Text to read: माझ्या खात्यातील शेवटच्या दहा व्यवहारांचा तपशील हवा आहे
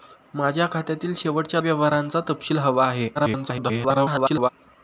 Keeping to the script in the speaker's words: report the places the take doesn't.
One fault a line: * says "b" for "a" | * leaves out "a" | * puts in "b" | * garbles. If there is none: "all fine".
* leaves out "दहा"
* garbles